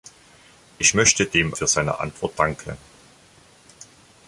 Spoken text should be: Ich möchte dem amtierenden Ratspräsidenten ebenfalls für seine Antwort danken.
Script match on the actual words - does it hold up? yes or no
no